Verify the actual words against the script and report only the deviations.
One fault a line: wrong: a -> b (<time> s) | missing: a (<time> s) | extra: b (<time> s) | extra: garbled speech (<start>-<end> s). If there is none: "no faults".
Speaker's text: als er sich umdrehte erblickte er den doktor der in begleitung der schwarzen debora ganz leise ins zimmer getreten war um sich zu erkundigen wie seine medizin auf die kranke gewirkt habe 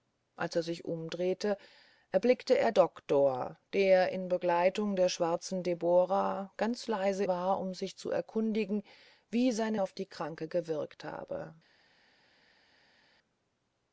missing: den (2.7 s)
missing: ins zimmer getreten (7.2 s)
missing: medizin (9.8 s)